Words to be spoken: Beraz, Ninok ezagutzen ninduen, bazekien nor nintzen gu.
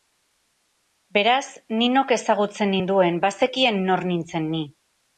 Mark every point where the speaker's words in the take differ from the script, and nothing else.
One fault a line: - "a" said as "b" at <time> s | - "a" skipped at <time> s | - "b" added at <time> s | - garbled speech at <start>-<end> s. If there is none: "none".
- "gu" said as "ni" at 4.6 s